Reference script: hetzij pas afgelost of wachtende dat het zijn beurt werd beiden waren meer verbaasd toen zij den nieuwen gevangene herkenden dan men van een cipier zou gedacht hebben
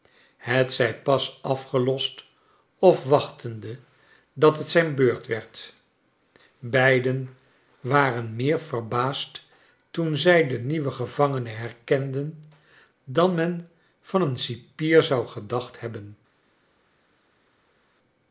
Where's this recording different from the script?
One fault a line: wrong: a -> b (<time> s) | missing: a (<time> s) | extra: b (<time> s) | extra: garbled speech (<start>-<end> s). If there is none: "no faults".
no faults